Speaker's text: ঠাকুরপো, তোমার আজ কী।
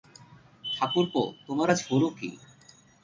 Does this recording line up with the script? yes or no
no